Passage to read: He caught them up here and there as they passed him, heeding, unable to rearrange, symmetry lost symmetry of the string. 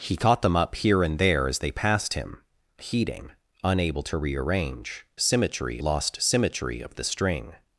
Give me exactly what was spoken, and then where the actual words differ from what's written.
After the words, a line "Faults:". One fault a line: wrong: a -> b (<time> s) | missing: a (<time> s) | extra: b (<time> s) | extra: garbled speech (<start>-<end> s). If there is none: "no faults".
He caught them up here and there as they passed him, heeding, unable to rearrange, symmetry lost symmetry of the string.
Faults:
no faults